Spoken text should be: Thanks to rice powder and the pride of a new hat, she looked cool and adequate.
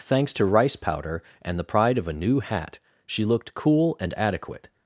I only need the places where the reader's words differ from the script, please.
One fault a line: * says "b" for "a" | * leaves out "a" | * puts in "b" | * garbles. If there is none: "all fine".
all fine